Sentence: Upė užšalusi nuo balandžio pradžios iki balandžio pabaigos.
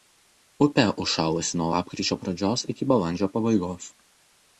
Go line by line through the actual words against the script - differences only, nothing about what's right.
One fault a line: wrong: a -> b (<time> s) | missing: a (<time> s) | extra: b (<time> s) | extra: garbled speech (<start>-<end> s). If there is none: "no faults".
wrong: balandžio -> lapkričio (1.7 s)